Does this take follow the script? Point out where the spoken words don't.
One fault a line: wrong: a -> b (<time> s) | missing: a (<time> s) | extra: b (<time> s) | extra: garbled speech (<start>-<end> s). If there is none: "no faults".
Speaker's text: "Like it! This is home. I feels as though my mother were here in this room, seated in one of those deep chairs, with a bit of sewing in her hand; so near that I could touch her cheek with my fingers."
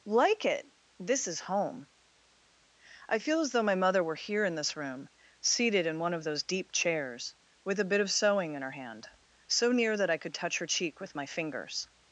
wrong: feels -> feel (3.2 s)